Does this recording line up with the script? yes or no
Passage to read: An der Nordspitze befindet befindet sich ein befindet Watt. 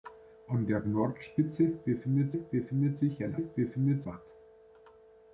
yes